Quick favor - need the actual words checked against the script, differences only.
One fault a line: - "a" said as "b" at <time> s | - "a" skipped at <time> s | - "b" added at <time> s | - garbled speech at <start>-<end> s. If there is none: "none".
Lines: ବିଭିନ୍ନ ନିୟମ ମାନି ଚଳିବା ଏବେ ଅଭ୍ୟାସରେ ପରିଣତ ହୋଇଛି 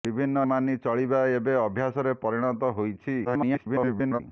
- "ନିୟମ" skipped at 0.4 s
- garbled speech at 3.2-4.2 s